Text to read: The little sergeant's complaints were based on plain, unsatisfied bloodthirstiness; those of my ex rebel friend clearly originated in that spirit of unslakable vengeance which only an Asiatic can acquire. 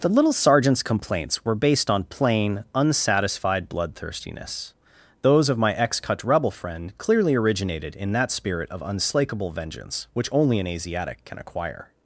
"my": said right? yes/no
yes